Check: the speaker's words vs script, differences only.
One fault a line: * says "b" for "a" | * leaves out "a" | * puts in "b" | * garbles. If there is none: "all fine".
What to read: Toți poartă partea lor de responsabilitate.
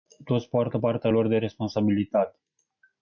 all fine